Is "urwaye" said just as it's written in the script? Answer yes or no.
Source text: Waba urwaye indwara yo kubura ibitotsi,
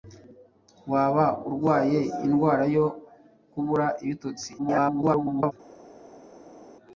yes